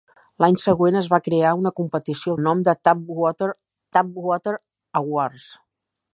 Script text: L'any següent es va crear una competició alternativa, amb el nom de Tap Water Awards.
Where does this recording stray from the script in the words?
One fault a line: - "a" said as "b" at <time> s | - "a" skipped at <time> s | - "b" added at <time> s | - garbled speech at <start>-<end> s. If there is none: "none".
- "alternativa amb" skipped at 2.3 s
- "Tap Water" added at 4.0 s